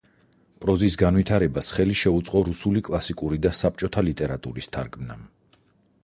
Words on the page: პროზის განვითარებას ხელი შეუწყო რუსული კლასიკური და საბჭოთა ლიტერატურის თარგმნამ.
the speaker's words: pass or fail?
pass